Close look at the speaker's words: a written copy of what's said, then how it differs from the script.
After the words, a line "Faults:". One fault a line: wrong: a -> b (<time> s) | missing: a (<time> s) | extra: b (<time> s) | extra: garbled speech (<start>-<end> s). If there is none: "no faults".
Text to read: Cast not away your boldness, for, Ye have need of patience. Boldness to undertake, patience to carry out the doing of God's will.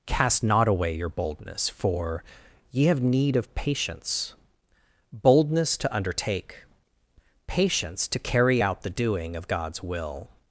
Cast not away your boldness, for, Ye have need of patience. Boldness to undertake, patience to carry out the doing of God's will.
Faults:
no faults